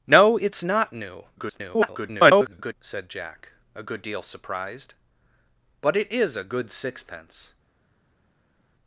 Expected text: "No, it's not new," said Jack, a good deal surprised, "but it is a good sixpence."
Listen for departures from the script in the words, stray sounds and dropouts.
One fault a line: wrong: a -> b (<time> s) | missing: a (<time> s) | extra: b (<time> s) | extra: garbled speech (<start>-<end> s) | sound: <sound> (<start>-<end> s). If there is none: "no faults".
extra: garbled speech (1.4-2.7 s)